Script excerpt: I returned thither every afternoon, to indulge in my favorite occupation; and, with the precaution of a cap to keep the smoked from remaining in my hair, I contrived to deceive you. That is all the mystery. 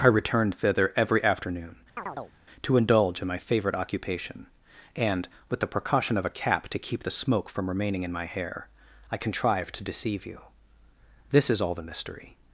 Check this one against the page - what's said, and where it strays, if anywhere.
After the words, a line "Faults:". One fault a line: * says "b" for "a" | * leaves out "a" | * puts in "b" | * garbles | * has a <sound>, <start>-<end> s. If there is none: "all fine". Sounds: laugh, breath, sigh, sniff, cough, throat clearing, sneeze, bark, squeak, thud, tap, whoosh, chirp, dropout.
I returned thither every afternoon, to indulge in my favorite occupation; and, with the precaution of a cap to keep the smoke from remaining in my hair, I contrived to deceive you. This is all the mystery.
Faults:
* has a chirp, 2.0-2.3 s
* says "smoke" for "smoked"
* says "This" for "That"